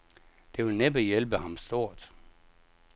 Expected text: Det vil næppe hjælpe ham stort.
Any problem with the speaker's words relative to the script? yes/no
no